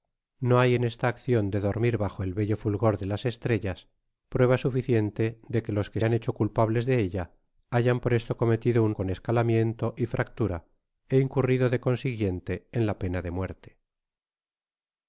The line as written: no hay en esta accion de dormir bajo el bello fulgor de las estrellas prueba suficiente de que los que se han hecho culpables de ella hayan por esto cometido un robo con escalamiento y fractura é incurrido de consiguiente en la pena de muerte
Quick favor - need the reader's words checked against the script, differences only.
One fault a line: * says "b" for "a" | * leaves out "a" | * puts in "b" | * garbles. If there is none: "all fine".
* leaves out "se"
* leaves out "robo"